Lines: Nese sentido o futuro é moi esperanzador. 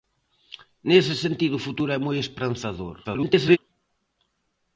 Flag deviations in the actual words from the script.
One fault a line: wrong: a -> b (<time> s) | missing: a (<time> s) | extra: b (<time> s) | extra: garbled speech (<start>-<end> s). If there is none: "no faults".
extra: garbled speech (3.0-3.6 s)